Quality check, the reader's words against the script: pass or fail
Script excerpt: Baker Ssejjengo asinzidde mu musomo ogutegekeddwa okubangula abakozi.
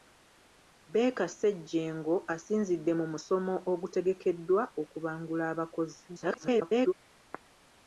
fail